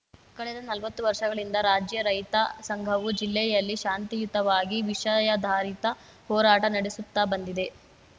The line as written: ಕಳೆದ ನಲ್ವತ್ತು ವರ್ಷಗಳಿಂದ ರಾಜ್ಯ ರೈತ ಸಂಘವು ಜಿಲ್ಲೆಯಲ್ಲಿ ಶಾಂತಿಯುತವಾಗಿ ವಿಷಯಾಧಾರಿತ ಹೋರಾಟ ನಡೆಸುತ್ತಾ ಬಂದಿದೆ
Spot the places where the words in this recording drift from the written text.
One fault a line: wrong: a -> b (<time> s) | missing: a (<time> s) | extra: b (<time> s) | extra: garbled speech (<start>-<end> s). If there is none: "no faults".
no faults